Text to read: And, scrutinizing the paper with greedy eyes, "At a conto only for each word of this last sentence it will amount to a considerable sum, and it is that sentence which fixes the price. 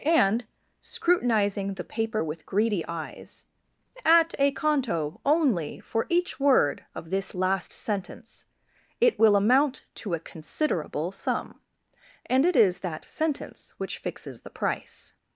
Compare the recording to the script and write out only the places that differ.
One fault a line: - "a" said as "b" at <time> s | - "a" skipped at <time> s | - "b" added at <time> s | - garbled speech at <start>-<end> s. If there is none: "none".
none